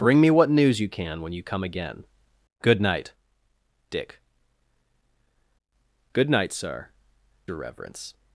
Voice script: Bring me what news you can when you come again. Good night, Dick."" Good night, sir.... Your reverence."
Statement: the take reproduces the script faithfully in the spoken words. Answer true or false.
true